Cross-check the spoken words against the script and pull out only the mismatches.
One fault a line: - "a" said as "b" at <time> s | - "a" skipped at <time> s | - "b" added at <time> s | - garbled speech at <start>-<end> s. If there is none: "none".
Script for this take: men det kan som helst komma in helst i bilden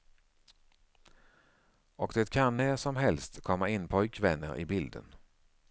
- "men" said as "och" at 1.9 s
- "när" added at 2.6 s
- "helst" said as "pojkvänner" at 3.9 s